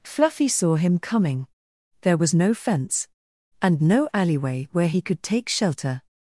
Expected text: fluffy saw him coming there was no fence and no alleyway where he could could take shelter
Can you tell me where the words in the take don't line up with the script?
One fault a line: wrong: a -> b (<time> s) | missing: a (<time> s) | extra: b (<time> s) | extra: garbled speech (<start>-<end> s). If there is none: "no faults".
missing: could (5.2 s)